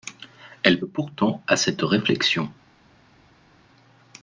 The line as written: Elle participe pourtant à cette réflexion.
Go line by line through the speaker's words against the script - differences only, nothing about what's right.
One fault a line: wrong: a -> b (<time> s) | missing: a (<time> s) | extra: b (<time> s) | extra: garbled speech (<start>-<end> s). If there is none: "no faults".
missing: participe (0.8 s)